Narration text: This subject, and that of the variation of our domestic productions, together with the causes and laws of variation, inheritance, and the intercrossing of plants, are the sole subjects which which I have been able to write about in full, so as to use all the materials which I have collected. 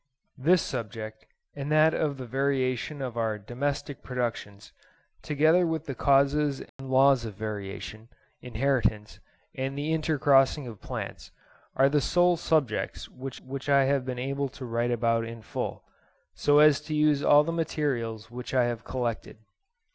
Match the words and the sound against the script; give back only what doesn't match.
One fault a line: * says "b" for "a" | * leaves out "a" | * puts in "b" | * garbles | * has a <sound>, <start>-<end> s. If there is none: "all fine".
* has a dropout, 6.7-6.8 s